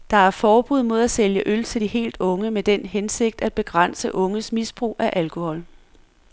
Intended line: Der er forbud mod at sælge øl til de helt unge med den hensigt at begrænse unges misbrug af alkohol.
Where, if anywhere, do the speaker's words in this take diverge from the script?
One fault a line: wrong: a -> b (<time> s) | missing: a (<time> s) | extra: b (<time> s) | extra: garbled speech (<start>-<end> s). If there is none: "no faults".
no faults